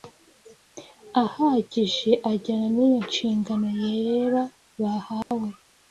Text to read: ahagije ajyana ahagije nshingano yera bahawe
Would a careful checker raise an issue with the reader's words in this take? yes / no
yes